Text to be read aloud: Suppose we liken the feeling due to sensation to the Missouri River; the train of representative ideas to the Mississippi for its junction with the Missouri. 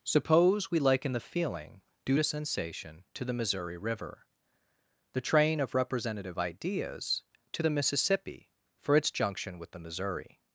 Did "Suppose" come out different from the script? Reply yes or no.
no